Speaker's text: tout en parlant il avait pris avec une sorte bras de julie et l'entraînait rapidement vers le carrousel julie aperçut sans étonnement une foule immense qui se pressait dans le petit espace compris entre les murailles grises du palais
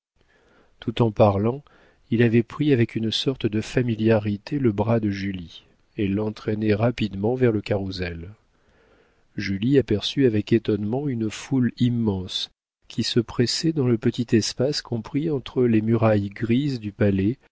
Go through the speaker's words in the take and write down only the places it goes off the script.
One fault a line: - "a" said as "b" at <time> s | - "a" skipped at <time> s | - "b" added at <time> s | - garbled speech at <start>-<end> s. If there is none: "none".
- "de familiarité le" added at 3.5 s
- "sans" said as "avec" at 10.3 s